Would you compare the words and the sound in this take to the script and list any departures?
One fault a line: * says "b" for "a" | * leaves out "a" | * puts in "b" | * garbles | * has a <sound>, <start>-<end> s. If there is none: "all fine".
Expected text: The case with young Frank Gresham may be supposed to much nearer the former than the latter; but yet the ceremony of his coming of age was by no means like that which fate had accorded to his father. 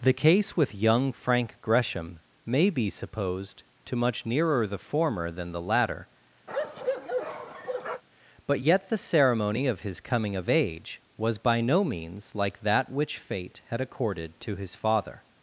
* has a bark, 6.5-8.0 s